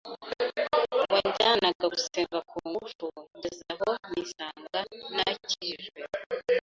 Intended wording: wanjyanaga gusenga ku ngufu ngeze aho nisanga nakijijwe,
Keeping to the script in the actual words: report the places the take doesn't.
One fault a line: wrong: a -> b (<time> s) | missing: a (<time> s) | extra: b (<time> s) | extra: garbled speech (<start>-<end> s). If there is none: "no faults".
no faults